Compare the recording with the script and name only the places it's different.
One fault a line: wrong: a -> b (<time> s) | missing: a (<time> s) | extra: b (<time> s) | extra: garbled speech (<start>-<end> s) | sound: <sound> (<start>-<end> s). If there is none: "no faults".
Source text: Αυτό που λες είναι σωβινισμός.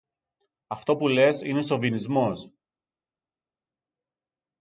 no faults